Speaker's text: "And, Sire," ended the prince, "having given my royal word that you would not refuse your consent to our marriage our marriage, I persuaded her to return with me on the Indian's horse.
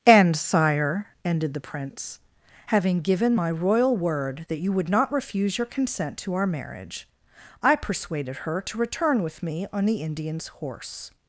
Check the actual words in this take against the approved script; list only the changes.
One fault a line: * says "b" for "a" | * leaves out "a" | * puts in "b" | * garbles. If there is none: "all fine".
* leaves out "our marriage"